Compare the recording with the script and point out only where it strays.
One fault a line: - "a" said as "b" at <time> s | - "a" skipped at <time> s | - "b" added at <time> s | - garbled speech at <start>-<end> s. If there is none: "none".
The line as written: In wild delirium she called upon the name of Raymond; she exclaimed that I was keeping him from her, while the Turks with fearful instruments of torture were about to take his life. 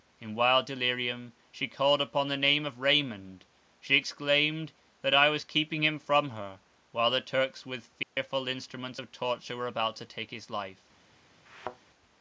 none